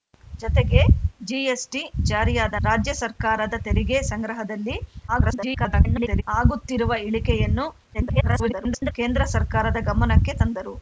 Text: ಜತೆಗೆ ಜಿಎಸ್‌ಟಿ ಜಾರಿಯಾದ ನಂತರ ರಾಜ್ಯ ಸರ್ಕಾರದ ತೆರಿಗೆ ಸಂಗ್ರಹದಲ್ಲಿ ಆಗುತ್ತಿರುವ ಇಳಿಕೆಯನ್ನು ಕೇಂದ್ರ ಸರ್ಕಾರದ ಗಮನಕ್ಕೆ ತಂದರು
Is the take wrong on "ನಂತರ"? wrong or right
wrong